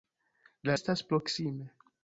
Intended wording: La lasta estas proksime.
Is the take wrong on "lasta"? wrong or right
wrong